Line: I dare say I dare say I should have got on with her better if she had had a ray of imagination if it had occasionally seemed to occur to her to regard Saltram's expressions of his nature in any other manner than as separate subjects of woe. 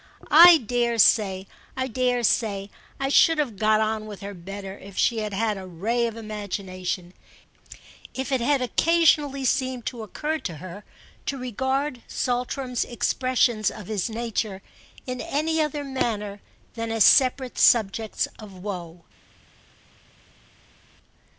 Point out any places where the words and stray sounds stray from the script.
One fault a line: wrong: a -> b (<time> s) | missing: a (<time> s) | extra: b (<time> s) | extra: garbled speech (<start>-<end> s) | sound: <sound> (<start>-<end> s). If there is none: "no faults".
no faults